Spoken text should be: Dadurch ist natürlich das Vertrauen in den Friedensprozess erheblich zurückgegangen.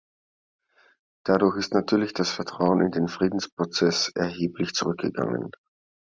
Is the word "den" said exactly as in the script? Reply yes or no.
yes